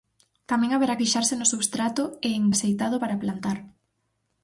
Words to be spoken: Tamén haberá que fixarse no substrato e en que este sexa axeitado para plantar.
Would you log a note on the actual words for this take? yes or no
yes